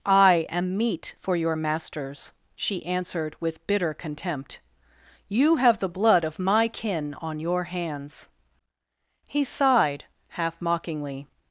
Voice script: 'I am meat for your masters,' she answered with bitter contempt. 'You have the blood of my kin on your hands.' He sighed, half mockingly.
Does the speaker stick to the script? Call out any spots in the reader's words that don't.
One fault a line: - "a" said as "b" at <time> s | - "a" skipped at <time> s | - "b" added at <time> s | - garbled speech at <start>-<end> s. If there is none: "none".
none